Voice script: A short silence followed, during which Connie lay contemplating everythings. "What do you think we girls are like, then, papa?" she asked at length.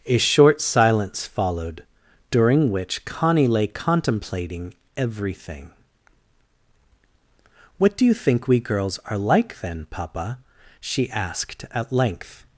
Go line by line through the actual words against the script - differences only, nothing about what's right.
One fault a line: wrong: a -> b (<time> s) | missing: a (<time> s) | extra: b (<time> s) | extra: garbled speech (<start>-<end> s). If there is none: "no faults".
wrong: everythings -> everything (5.0 s)